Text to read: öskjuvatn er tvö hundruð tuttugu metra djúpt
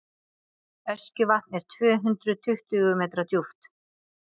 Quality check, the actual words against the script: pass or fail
pass